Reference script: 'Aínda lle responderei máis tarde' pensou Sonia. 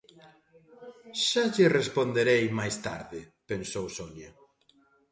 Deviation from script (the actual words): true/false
true